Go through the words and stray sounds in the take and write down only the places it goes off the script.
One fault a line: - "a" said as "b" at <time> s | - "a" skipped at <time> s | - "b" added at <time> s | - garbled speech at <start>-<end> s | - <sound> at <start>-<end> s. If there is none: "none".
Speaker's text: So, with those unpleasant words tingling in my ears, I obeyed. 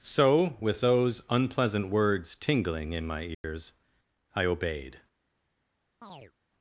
- dropout at 3.3-3.4 s
- chirp at 6.0-6.3 s